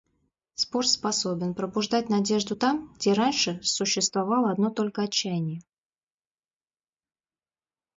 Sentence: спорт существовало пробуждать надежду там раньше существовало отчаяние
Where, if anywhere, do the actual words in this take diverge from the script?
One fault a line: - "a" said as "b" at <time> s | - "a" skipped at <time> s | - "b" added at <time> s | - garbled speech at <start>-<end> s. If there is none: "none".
- "существовало" said as "способен" at 0.9 s
- "где" added at 2.9 s
- "одно только" added at 4.5 s